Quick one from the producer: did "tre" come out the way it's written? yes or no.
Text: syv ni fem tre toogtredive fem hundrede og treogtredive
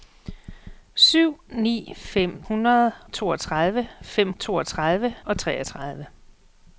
no